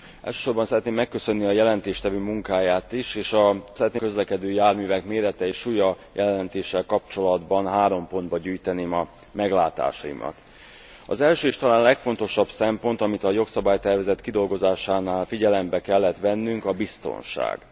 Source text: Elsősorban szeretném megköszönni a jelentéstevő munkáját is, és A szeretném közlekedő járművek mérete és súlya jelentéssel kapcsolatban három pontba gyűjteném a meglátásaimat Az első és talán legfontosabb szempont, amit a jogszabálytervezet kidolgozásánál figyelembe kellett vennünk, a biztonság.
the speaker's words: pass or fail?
pass